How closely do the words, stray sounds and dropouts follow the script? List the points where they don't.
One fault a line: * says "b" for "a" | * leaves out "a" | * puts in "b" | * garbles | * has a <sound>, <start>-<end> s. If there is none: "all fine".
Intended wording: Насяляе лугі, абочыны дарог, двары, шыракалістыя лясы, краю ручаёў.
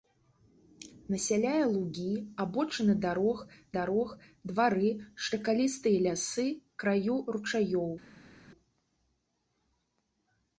* puts in "дарог"